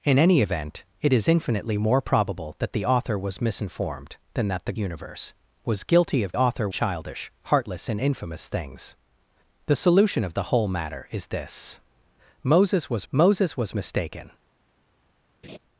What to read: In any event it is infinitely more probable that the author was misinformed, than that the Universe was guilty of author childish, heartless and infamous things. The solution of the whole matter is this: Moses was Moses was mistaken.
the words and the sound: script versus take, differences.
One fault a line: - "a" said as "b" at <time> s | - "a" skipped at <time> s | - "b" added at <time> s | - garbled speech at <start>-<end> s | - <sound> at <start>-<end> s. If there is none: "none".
- laugh at 15.4-15.6 s